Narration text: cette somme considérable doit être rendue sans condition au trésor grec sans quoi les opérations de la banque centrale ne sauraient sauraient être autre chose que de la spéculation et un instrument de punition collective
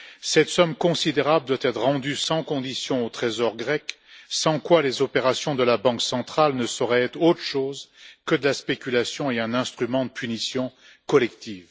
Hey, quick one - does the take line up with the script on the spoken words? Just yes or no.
no